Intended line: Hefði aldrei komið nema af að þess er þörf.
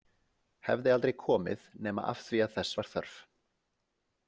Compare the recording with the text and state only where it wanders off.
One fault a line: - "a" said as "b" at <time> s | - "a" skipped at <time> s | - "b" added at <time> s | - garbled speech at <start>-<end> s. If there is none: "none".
- "því" added at 2.3 s
- "er" said as "var" at 2.8 s